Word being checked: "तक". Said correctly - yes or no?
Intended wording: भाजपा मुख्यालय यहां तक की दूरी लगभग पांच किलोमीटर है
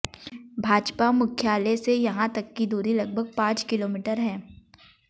yes